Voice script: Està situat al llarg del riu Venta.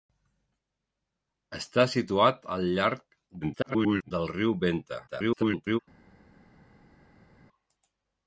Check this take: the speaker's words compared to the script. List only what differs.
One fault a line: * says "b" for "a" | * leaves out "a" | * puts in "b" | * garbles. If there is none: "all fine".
* garbles
* garbles